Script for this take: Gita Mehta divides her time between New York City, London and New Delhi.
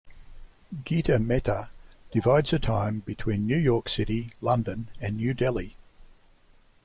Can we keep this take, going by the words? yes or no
yes